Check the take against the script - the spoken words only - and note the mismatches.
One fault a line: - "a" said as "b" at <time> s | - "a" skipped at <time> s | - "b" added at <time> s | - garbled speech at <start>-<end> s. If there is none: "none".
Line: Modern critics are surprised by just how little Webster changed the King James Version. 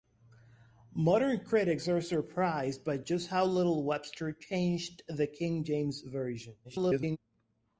- garbled speech at 6.6-7.2 s